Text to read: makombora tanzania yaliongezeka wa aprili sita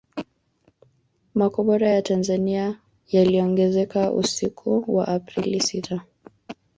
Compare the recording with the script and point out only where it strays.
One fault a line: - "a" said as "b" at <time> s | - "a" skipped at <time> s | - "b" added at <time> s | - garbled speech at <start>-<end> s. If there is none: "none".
- "ya" added at 1.9 s
- "usiku" added at 4.1 s